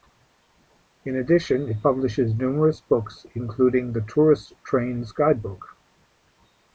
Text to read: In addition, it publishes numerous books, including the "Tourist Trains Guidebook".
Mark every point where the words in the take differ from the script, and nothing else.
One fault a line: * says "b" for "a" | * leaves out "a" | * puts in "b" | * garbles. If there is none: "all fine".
all fine